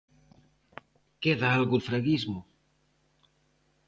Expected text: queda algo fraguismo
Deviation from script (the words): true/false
false